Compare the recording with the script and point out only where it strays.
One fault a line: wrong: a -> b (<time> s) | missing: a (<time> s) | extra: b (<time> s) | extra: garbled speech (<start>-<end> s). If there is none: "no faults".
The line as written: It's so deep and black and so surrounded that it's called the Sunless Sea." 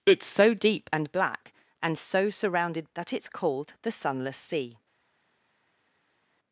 no faults